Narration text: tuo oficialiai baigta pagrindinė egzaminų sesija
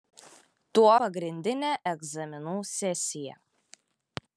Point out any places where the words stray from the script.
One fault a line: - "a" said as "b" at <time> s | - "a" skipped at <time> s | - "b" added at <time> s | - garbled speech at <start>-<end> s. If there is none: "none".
- "oficialiai baigta" skipped at 0.9 s